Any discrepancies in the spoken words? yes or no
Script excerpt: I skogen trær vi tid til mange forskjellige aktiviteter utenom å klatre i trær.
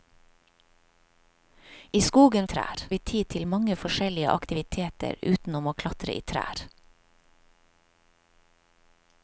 no